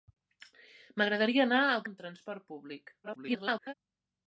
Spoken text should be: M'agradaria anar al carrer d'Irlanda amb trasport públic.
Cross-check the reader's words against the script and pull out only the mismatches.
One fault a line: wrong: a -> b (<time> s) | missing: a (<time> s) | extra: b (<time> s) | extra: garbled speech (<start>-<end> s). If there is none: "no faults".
missing: carrer d'Irlanda (1.9 s)
extra: garbled speech (3.0-3.7 s)